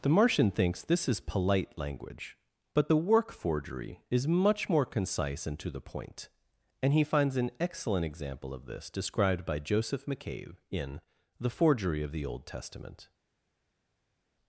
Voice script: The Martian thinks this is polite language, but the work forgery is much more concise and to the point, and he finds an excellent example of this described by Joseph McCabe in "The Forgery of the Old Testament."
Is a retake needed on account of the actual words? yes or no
no